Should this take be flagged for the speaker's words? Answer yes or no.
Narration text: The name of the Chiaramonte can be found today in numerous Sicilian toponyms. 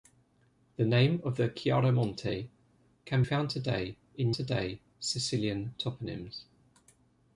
yes